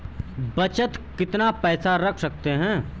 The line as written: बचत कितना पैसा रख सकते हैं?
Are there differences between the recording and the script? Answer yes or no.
no